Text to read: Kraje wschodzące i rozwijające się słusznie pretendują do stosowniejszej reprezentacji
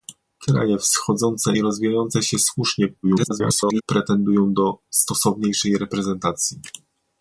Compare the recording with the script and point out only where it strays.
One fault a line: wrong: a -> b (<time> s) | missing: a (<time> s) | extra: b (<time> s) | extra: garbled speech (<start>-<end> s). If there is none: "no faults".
extra: garbled speech (3.0-3.8 s)